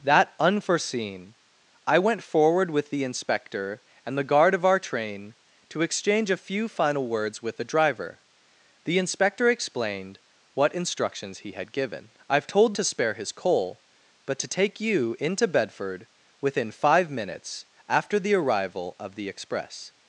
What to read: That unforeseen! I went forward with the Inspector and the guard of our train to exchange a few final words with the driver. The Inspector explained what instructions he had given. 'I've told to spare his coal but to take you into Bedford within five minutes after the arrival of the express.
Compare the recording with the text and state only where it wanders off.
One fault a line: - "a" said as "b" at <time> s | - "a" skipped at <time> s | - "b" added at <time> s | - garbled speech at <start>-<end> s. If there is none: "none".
none